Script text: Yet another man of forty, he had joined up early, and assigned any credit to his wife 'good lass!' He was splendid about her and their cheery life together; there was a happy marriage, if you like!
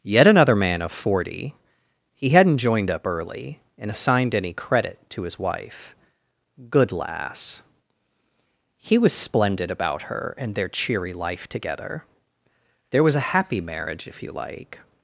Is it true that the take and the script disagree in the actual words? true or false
true